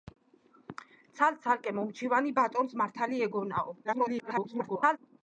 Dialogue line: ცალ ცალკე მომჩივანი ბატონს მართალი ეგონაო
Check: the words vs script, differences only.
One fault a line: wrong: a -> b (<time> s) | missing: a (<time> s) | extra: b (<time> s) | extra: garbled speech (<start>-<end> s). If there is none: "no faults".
extra: garbled speech (3.8-5.0 s)